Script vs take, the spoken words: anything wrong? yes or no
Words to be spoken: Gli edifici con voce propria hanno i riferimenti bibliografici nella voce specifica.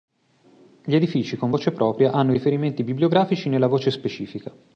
no